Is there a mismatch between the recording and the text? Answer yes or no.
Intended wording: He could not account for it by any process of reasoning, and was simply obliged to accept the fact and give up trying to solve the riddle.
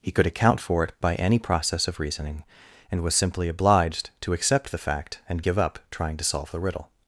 yes